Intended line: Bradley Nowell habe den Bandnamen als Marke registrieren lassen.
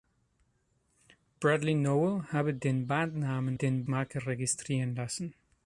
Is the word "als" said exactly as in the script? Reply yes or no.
no